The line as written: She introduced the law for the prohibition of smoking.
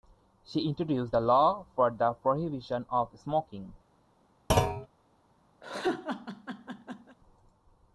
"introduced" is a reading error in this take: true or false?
false